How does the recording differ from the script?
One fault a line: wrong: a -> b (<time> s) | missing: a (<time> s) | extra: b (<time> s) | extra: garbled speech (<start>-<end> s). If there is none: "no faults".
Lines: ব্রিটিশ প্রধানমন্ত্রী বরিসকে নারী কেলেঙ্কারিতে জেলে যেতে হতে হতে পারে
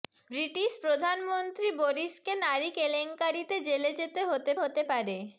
no faults